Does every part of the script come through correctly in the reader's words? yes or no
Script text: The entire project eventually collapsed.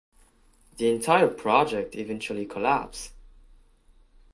yes